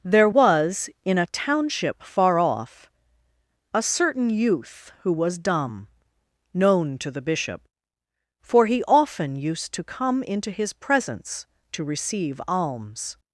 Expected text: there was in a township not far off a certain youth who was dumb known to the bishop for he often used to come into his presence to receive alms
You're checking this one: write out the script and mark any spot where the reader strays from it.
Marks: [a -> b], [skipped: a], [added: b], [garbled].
there was in a township [skipped: not] far off a certain youth who was dumb known to the bishop for he often used to come into his presence to receive alms